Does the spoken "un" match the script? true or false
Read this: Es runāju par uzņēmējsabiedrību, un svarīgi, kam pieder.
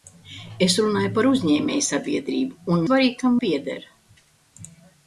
true